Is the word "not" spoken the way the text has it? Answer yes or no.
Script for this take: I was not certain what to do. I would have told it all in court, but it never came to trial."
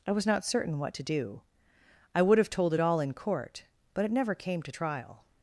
yes